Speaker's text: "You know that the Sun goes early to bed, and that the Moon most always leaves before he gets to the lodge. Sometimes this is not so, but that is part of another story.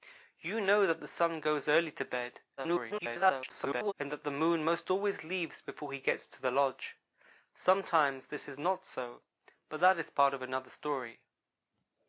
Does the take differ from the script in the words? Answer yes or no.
yes